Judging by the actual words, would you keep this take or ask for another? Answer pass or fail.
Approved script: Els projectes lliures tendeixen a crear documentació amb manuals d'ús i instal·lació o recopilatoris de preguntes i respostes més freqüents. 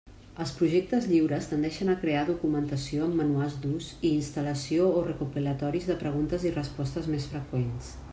pass